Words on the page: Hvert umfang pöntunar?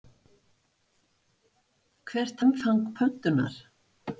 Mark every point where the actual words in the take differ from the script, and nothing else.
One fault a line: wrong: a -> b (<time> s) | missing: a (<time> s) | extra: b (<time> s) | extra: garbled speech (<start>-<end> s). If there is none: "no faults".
no faults